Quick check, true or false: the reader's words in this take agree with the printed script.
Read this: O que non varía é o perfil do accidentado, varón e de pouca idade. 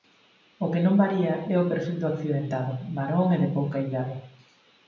true